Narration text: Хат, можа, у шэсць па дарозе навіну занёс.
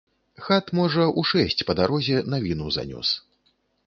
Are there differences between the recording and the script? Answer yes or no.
no